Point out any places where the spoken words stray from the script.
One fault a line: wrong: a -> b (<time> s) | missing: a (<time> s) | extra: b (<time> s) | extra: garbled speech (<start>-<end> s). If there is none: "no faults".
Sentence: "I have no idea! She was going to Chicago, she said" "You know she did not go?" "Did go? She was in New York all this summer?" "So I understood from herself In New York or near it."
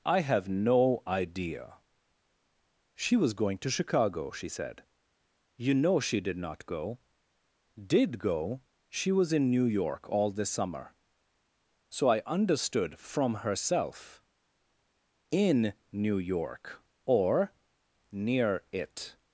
no faults